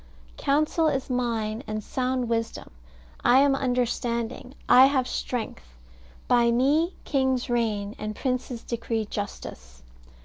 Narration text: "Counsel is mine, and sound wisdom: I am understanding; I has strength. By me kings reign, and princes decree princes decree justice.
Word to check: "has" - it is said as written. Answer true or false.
false